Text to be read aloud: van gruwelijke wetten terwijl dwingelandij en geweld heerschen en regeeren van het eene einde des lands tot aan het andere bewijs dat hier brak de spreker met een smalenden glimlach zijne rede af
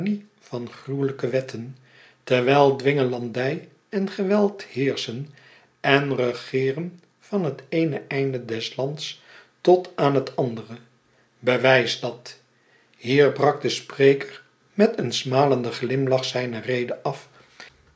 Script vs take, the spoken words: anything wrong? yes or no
no